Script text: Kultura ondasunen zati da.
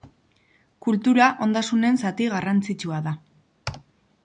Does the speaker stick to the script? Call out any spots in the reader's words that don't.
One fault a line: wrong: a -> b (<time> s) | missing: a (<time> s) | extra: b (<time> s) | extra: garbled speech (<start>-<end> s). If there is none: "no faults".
extra: garrantzitsua (2.3 s)